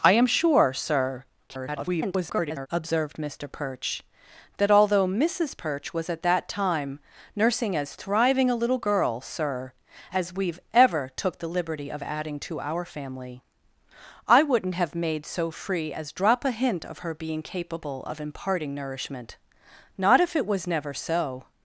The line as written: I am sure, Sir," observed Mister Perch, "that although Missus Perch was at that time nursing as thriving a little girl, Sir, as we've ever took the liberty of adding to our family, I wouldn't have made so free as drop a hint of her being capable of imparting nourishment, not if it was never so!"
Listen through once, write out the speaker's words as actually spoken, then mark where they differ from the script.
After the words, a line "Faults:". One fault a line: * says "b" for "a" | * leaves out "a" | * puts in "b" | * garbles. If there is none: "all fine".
I am sure, Sir," [garbled] observed Mister Perch, "that although Missus Perch was at that time nursing as thriving a little girl, Sir, as we've ever took the liberty of adding to our family, I wouldn't have made so free as drop a hint of her being capable of imparting nourishment, not if it was never so!"
Faults:
* garbles